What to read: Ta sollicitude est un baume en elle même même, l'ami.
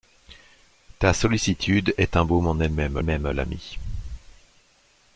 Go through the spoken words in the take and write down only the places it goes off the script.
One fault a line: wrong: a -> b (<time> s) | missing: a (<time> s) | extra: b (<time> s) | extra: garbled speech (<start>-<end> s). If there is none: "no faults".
no faults